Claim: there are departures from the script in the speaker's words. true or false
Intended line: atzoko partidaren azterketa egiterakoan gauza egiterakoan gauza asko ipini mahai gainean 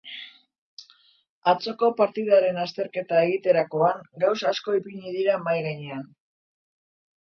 true